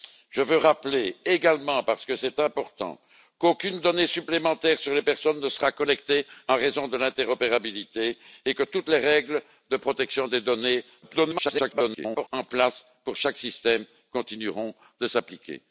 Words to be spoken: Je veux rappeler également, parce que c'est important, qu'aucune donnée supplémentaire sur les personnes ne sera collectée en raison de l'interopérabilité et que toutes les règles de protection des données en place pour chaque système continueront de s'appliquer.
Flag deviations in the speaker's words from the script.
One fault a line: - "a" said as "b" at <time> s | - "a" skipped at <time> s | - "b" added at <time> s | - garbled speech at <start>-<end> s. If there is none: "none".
- garbled speech at 11.0-12.3 s